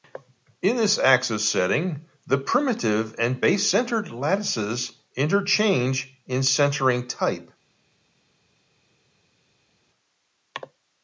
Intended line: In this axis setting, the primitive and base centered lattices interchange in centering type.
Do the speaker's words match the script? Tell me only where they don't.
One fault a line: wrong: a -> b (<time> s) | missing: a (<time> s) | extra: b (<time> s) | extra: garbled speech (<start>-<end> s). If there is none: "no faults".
no faults